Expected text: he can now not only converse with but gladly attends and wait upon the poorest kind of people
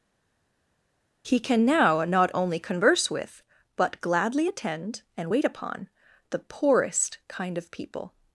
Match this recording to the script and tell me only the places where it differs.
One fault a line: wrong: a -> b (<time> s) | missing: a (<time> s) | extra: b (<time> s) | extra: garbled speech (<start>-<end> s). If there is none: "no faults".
wrong: attends -> attend (4.4 s)